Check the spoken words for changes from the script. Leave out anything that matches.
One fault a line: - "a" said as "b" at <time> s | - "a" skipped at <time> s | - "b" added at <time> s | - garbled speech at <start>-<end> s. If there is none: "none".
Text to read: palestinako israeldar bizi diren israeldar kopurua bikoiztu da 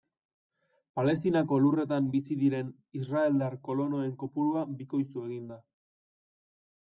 - "israeldar" said as "lurretan" at 1.6 s
- "kolonoen" added at 3.7 s
- "egin" added at 5.3 s